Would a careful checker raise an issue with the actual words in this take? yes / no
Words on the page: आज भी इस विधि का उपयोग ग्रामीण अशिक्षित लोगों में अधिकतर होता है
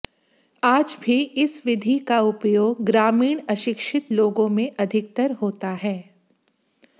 no